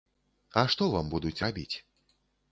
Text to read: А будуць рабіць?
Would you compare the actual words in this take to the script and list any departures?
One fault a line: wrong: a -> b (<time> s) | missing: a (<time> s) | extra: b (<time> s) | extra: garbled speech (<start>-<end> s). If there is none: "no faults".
extra: што вам (0.8 s)